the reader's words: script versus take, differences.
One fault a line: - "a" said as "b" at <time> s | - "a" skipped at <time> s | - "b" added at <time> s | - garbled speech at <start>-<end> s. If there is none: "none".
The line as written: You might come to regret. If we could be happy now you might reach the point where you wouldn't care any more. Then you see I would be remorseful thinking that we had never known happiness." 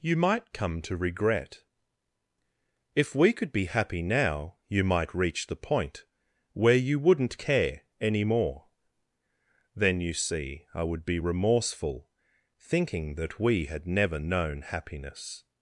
none